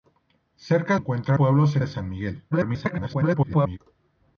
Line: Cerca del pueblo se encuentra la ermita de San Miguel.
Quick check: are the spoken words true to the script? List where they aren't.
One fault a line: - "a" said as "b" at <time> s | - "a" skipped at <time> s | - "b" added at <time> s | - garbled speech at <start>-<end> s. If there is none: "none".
- "del" said as "encuentra" at 0.9 s
- "encuentra la ermita" skipped at 1.8 s
- garbled speech at 2.5-3.8 s